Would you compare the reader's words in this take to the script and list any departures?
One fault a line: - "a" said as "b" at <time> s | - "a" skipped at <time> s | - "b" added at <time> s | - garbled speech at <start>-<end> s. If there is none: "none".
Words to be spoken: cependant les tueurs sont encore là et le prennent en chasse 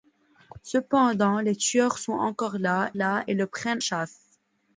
- "là" added at 2.9 s
- "en" skipped at 3.8 s